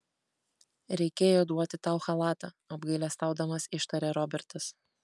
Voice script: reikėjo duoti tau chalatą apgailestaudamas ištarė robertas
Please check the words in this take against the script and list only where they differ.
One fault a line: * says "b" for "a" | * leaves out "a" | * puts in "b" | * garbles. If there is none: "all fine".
all fine